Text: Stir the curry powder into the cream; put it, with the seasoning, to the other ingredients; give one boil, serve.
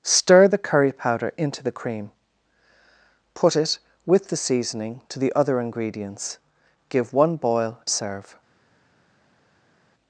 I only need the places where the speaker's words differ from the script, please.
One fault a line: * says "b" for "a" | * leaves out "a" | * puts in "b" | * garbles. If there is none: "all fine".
all fine